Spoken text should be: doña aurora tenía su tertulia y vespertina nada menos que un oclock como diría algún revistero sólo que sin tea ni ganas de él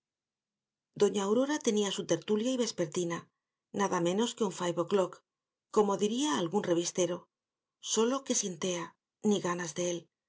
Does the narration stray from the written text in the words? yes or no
yes